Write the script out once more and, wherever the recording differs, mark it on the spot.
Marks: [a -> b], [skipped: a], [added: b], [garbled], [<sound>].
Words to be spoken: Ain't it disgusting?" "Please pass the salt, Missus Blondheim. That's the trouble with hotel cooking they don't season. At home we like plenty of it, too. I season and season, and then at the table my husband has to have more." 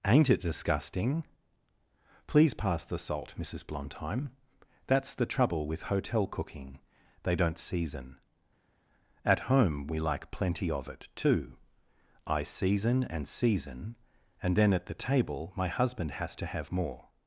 Ain't it disgusting?" "Please pass the salt, Missus Blondheim. That's the trouble with hotel cooking they don't season. At home we like plenty of it, too. I season and season, and then at the table my husband has to have more."